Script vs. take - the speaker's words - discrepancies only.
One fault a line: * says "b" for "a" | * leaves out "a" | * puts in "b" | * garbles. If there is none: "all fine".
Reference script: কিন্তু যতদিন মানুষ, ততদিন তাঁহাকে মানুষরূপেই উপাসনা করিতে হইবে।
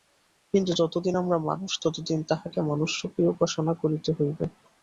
* puts in "আমরা"